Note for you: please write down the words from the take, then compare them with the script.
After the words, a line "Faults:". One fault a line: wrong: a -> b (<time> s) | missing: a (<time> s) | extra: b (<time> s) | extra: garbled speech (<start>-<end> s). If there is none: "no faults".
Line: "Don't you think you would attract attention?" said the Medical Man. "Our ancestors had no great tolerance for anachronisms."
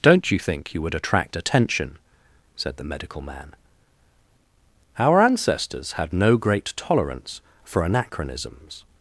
"Don't you think you would attract attention?" said the Medical Man. "Our ancestors had no great tolerance for anachronisms."
Faults:
no faults